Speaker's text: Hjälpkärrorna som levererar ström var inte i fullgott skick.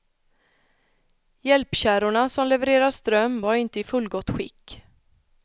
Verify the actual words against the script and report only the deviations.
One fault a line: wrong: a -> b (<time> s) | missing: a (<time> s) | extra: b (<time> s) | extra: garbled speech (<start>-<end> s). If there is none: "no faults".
no faults